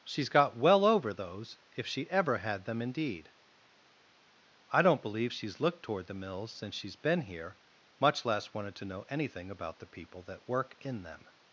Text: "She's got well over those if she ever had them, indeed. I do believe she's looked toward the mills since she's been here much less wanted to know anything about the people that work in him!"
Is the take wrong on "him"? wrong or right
wrong